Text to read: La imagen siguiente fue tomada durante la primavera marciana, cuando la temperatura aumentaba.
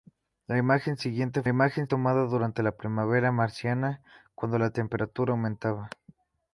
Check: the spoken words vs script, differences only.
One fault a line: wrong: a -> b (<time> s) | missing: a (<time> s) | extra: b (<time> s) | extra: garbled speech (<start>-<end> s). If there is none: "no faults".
wrong: fue -> imagen (1.5 s)